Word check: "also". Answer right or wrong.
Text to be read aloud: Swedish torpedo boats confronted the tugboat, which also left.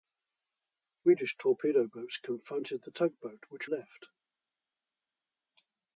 wrong